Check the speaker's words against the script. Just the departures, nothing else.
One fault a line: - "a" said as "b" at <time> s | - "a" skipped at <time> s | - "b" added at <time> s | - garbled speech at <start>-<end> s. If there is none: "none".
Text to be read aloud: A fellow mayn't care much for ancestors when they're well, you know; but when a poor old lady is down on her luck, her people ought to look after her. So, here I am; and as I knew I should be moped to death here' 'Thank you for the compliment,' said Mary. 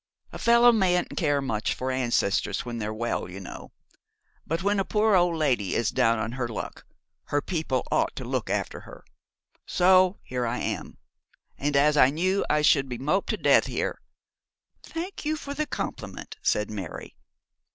none